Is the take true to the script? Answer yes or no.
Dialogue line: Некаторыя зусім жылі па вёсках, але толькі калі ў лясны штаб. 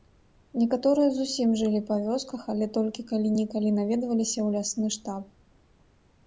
no